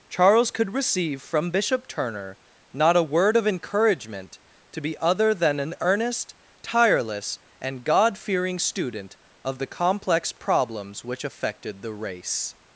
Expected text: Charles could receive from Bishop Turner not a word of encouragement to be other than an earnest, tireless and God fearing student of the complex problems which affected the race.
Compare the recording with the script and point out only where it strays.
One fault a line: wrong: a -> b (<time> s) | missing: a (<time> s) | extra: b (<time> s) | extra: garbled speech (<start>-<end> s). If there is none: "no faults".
no faults